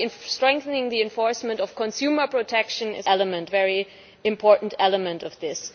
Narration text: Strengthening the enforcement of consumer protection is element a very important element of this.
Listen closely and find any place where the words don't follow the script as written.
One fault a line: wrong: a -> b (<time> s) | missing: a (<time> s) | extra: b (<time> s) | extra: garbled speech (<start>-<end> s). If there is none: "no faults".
no faults